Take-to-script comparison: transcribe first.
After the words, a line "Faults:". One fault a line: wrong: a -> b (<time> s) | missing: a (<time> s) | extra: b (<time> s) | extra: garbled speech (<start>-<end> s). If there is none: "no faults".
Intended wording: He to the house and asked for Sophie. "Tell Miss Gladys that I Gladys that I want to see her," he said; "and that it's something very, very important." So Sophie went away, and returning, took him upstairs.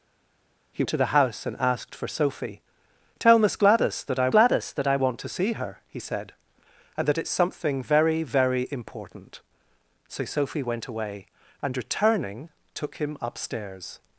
He to the house and asked for Sophie. "Tell Miss Gladys that I Gladys that I want to see her," he said; "and that it's something very, very important." So Sophie went away, and returning, took him upstairs.
Faults:
no faults